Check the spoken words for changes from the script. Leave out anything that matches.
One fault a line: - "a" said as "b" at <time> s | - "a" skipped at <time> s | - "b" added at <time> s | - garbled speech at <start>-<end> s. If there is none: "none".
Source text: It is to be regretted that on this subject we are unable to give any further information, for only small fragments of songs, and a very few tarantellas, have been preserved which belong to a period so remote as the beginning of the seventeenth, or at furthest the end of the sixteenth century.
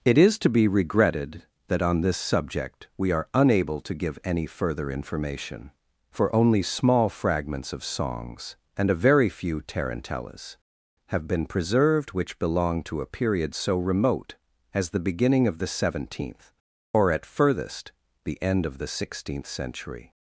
none